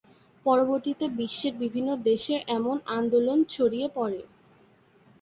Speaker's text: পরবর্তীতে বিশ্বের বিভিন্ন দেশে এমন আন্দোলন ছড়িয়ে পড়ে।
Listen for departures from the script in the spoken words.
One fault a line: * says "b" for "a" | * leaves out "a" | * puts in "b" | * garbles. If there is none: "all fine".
all fine